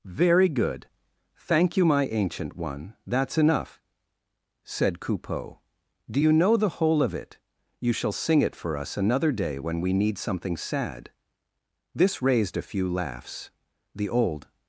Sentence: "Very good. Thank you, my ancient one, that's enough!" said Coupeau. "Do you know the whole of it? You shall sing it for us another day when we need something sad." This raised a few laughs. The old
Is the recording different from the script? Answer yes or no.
no